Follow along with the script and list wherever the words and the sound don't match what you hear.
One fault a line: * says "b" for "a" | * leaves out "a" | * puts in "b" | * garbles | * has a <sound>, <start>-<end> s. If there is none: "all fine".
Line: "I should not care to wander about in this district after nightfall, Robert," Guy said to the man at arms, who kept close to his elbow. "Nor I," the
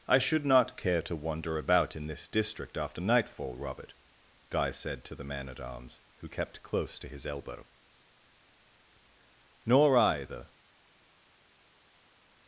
all fine